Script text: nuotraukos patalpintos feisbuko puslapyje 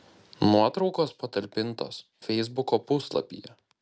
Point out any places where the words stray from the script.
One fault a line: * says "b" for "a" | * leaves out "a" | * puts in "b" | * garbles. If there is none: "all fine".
all fine